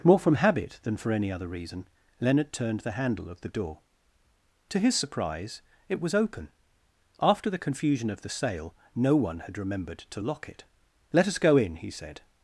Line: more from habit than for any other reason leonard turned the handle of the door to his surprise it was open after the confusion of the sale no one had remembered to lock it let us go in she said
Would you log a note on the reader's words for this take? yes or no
yes